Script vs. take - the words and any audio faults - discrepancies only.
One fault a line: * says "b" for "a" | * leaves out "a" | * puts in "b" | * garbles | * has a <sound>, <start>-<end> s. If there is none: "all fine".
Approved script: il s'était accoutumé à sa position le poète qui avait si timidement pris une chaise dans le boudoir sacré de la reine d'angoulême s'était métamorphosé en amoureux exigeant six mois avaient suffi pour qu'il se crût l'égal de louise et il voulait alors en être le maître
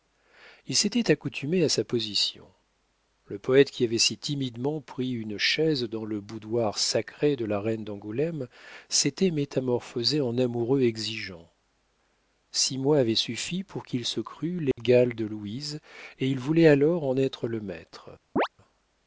* has a dropout, 14.7-14.8 s
* has a chirp, 18.4-18.5 s